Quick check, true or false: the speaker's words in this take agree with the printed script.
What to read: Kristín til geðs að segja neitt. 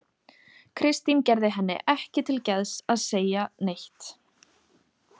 false